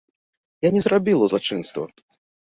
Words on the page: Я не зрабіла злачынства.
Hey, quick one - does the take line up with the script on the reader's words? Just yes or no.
yes